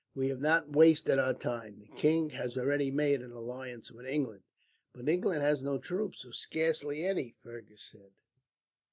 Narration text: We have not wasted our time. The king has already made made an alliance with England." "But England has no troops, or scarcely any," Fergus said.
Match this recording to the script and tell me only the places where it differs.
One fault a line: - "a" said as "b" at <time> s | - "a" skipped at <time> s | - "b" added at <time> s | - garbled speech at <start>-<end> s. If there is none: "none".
- "made" skipped at 3.2 s